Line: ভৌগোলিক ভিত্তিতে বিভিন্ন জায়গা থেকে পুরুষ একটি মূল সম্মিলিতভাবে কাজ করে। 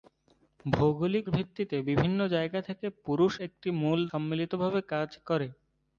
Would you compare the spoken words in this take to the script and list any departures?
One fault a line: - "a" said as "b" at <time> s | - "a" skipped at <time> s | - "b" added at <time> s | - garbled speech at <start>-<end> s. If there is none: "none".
none